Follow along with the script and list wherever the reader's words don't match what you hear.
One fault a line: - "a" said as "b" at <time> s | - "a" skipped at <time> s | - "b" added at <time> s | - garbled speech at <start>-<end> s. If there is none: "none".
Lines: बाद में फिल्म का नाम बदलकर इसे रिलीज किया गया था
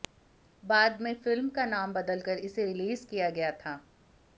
none